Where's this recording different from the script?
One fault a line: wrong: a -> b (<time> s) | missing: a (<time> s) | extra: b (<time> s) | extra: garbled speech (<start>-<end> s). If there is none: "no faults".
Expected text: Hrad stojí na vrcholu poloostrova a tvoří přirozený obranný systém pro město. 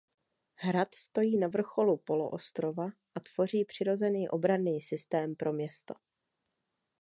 no faults